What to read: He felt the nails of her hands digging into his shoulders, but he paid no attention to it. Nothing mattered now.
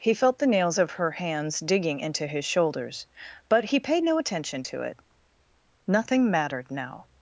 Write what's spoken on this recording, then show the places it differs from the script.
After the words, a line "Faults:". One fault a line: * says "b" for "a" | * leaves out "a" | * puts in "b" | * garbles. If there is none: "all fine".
He felt the nails of her hands digging into his shoulders, but he paid no attention to it. Nothing mattered now.
Faults:
all fine